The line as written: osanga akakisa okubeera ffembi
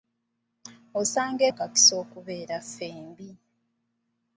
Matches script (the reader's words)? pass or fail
pass